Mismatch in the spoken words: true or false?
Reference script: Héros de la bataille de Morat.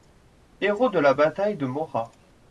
false